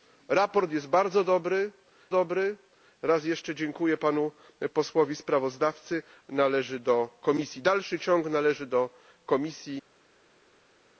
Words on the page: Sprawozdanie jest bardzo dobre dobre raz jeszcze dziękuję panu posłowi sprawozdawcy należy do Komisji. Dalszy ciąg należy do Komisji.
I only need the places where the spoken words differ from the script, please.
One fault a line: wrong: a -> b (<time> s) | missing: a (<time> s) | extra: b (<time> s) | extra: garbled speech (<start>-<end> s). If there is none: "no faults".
no faults